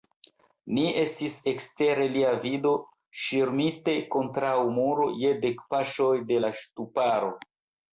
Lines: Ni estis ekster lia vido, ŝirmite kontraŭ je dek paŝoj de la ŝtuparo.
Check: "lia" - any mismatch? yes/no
no